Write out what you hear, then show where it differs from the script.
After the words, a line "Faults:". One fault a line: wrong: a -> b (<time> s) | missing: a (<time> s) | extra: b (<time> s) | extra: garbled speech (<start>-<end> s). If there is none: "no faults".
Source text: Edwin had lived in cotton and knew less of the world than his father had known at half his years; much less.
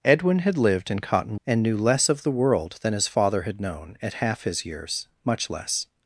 Edwin had lived in cotton and knew less of the world than his father had known at half his years; much less.
Faults:
no faults